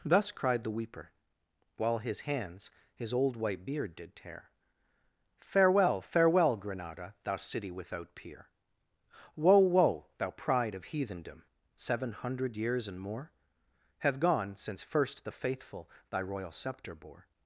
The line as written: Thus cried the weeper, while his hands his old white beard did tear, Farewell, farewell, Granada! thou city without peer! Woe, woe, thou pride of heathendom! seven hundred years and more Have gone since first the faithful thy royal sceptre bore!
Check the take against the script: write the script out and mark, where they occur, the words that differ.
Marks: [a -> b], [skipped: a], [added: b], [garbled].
Thus cried the weeper, while his hands his old white beard did tear, Farewell, farewell, Granada! thou city without peer! Woe, woe, thou pride of heathendom! seven hundred years and more Have gone since first the faithful thy royal sceptre bore!